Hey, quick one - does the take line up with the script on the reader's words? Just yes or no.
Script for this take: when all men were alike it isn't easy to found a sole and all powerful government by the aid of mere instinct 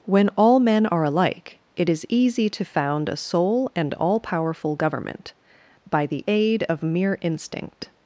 no